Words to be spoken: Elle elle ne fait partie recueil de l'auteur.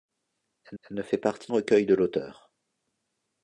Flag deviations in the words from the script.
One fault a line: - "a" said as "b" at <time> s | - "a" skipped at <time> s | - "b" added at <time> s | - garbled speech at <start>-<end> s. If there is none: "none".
none